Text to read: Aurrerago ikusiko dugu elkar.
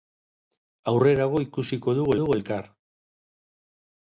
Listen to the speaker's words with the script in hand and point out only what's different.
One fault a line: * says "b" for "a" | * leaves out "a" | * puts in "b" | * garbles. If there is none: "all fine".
* puts in "dugu"